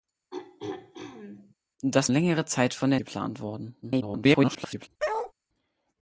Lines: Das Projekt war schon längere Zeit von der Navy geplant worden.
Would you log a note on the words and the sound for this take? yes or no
yes